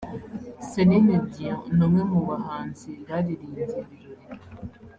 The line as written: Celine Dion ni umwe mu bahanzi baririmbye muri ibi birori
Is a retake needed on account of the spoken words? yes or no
yes